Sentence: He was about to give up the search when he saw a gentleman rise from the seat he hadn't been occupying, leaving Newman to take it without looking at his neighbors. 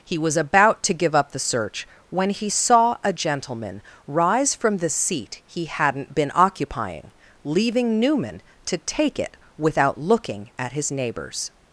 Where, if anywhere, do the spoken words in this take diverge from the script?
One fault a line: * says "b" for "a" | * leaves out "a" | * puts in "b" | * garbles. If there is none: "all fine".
all fine